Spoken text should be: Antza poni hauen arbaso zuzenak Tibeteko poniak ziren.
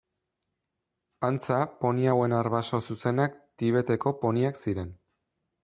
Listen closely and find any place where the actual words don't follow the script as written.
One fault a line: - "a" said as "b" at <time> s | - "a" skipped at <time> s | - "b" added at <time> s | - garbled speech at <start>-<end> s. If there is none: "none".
none